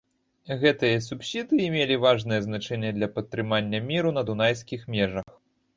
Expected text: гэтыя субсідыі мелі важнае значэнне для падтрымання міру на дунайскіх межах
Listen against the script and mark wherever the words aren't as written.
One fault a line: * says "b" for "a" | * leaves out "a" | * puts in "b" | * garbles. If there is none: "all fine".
all fine